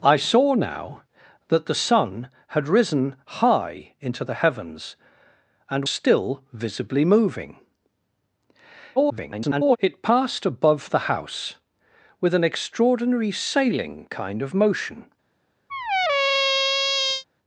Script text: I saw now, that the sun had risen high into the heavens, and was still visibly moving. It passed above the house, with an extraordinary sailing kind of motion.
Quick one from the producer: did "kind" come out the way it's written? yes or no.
yes